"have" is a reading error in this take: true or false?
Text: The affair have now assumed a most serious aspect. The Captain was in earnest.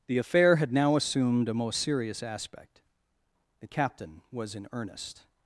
true